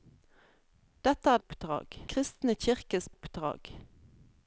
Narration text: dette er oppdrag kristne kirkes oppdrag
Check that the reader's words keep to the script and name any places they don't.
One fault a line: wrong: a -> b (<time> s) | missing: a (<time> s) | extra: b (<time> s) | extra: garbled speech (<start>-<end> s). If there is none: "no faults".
no faults